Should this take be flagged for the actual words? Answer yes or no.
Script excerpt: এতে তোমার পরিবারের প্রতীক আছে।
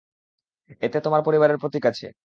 no